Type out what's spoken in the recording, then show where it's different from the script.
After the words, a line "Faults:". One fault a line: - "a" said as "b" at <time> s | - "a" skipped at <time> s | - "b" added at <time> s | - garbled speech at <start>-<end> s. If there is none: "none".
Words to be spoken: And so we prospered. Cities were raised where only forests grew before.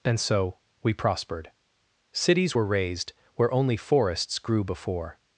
And so we prospered. Cities were raised where only forests grew before.
Faults:
none